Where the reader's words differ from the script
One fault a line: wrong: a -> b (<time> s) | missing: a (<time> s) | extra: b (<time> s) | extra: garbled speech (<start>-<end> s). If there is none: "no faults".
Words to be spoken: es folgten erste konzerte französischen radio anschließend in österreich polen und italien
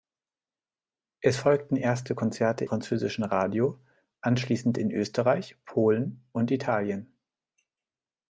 no faults